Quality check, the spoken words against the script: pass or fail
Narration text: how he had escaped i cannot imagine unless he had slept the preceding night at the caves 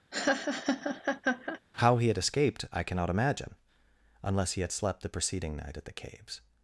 pass